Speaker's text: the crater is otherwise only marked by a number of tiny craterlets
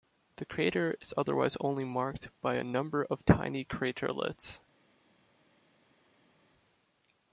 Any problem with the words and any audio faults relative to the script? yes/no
no